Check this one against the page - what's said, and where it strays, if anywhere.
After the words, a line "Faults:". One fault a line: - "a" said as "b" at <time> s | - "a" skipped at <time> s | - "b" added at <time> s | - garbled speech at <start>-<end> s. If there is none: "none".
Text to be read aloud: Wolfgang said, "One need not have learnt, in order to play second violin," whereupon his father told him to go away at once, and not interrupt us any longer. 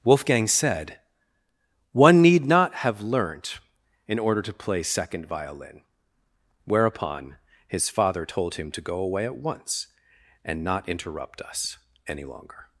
Wolfgang said, "One need not have learnt, in order to play second violin," whereupon his father told him to go away at once, and not interrupt us any longer.
Faults:
none